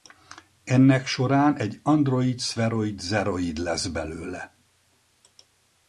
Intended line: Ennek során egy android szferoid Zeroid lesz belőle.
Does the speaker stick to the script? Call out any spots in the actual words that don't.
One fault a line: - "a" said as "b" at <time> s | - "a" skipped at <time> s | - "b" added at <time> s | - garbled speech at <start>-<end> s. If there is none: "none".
none